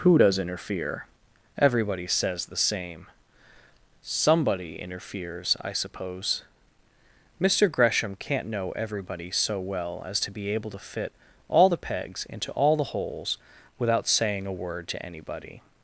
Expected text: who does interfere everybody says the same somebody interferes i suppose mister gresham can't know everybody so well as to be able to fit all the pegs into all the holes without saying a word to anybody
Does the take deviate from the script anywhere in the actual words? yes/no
no